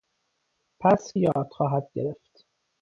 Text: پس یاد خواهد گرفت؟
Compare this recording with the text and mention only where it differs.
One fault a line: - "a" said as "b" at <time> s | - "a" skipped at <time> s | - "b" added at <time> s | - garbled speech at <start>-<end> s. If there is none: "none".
none